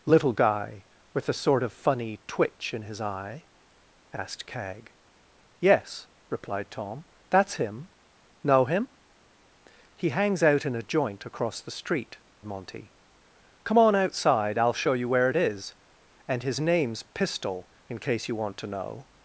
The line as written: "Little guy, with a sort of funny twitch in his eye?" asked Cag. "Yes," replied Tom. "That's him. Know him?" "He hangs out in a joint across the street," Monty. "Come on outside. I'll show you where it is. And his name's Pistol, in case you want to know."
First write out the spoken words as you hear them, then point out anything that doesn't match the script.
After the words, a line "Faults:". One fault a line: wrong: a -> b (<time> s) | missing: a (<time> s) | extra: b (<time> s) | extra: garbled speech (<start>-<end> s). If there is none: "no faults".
"Little guy, with a sort of funny twitch in his eye?" asked Cag. "Yes," replied Tom. "That's him. Know him?" "He hangs out in a joint across the street," Monty. "Come on outside. I'll show you where it is. And his name's Pistol, in case you want to know."
Faults:
no faults